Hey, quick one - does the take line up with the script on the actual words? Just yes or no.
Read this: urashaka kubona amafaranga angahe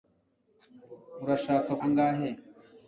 no